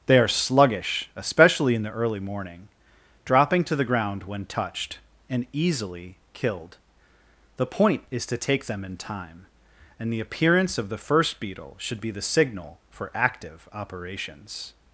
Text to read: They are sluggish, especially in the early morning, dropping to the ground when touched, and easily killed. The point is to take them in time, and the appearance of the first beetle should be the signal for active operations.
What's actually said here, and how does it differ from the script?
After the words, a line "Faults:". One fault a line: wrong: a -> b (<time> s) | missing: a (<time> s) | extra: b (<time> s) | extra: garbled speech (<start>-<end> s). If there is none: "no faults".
They are sluggish, especially in the early morning, dropping to the ground when touched, and easily killed. The point is to take them in time, and the appearance of the first beetle should be the signal for active operations.
Faults:
no faults